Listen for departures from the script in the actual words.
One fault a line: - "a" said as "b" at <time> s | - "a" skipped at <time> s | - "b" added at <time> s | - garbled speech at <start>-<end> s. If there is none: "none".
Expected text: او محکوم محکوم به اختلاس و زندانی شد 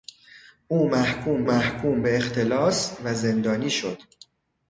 none